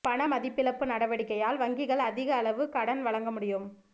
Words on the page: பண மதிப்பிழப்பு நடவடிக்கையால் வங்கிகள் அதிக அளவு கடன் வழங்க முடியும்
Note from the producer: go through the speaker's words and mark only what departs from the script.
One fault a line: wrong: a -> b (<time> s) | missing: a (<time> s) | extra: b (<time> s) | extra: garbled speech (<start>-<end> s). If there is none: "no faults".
no faults